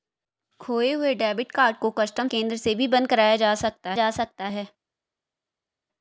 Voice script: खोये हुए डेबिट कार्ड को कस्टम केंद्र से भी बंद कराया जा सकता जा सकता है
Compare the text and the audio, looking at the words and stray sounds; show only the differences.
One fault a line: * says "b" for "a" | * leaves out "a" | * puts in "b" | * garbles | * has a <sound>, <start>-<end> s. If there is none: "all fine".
all fine